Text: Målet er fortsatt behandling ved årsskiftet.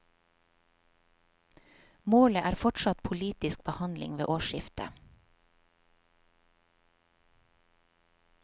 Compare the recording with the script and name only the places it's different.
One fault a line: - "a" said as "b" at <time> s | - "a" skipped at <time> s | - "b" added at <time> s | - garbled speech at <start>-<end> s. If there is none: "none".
- "politisk" added at 3.1 s